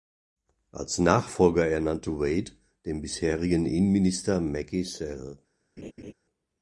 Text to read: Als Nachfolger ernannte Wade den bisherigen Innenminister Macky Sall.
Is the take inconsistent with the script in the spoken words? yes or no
no